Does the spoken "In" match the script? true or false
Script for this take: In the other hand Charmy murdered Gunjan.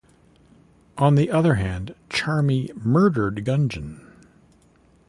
false